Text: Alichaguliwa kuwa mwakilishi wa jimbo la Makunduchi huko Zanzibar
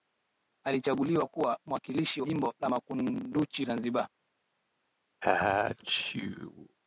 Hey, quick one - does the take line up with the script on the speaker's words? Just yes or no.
no